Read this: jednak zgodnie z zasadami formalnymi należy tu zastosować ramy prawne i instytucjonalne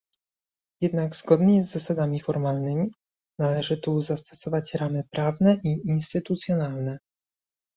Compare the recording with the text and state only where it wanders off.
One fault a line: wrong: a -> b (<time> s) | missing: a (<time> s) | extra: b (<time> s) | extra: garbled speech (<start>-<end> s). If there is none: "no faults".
no faults